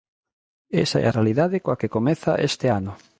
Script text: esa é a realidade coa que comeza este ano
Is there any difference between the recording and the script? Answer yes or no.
no